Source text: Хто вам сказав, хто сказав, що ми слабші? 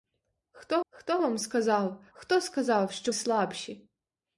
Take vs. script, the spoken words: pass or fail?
fail